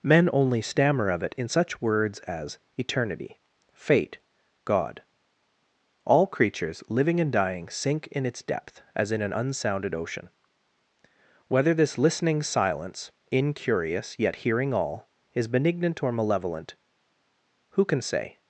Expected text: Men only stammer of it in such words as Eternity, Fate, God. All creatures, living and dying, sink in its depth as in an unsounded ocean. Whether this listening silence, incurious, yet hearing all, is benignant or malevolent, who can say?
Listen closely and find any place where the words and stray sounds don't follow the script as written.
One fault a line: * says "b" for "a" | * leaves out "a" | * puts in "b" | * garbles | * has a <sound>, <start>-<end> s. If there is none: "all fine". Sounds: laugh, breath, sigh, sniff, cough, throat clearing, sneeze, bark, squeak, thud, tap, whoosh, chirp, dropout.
all fine